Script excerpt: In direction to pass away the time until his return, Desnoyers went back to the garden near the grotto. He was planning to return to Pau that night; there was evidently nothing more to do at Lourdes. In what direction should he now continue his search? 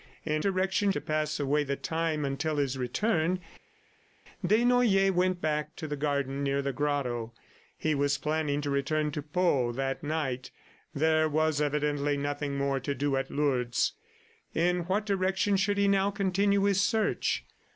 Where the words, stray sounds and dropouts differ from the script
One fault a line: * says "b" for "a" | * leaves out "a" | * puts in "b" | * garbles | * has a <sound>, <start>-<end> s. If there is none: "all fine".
all fine